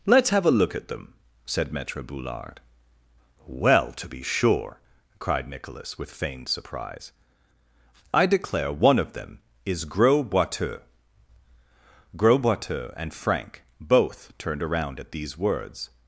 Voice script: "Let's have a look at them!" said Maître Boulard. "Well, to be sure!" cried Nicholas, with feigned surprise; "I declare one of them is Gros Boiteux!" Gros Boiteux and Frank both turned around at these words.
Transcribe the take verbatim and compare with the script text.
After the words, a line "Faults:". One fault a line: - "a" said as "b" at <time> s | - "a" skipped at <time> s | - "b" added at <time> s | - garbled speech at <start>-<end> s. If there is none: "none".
"Let's have a look at them!" said Maître Boulard. "Well, to be sure!" cried Nicholas, with feigned surprise; "I declare one of them is Gros Boiteux!" Gros Boiteux and Frank both turned around at these words.
Faults:
none